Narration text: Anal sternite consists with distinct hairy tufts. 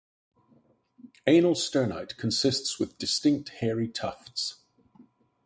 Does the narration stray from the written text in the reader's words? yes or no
no